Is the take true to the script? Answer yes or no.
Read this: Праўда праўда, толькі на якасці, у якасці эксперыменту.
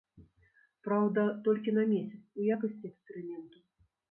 no